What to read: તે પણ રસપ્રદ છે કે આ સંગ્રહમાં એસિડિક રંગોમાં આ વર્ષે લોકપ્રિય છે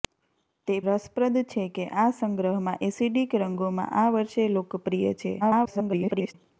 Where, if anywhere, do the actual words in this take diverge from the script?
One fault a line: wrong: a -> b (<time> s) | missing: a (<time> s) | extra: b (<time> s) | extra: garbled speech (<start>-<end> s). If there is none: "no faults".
missing: પણ (0.8 s)
extra: garbled speech (5.4-6.3 s)